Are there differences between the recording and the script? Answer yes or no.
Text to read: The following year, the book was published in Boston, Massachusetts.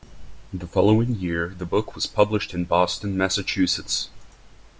no